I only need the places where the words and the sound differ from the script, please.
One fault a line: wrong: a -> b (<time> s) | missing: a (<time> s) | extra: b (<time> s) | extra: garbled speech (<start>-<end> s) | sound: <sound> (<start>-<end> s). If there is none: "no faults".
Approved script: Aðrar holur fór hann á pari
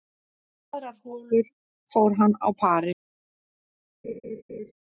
sound: laugh (4.0-4.7 s)